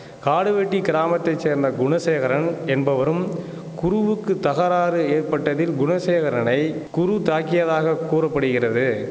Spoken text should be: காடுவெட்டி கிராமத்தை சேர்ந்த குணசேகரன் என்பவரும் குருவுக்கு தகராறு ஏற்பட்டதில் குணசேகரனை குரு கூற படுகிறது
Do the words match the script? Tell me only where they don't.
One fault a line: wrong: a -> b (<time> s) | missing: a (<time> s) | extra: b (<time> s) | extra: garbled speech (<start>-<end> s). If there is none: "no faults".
extra: தாக்கியதாக (7.2 s)